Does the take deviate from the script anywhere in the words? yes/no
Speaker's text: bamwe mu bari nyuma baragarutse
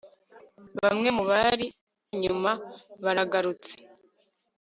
no